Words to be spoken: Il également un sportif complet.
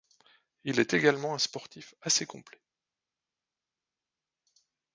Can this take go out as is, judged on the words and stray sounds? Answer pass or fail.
fail